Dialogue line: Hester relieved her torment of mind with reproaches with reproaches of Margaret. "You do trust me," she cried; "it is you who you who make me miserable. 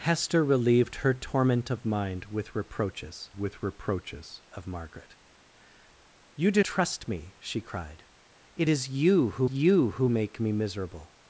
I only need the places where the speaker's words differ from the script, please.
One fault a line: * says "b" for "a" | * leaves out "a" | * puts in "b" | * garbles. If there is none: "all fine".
all fine